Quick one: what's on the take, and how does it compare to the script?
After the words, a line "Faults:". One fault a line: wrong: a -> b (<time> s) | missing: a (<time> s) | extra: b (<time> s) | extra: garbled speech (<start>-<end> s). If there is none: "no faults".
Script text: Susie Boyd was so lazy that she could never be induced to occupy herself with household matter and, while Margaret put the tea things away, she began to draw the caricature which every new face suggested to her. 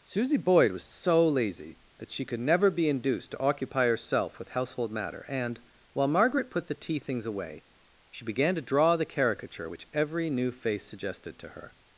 Susie Boyd was so lazy that she could never be induced to occupy herself with household matter and, while Margaret put the tea things away, she began to draw the caricature which every new face suggested to her.
Faults:
no faults